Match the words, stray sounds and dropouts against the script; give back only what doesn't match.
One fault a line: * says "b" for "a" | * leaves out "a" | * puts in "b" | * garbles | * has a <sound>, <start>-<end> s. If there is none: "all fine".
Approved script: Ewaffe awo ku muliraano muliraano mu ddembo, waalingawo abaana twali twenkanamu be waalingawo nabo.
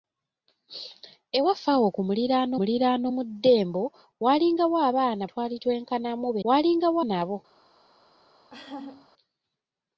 * has a laugh, 8.5-9.1 s